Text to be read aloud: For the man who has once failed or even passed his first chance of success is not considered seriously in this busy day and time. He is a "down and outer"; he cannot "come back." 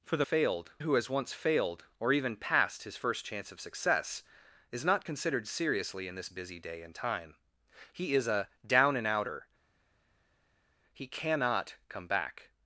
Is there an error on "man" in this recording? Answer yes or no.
yes